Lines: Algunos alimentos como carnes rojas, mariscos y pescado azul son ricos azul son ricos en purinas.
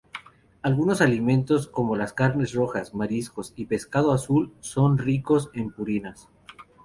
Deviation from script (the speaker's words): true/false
true